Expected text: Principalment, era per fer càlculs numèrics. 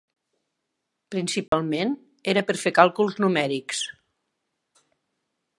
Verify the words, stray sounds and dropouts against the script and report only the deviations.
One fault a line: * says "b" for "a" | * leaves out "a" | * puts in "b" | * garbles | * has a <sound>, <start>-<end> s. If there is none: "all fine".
* has a dropout, 1.5-1.5 s